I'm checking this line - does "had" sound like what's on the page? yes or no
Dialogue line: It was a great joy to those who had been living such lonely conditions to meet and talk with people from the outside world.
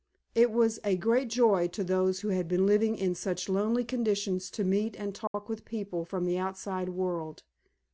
yes